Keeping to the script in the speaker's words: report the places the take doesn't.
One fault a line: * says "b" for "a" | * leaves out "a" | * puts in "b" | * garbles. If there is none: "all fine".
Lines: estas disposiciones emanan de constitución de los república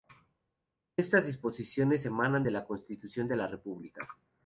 * puts in "la"
* says "la" for "los"